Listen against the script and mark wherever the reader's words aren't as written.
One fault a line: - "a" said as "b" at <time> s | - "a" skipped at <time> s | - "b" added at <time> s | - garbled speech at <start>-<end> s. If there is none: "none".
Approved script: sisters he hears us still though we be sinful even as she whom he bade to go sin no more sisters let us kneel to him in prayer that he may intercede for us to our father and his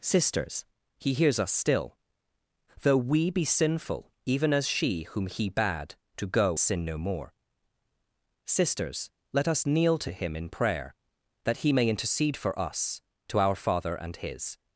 none